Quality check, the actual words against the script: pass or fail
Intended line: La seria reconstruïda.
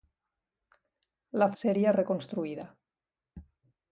pass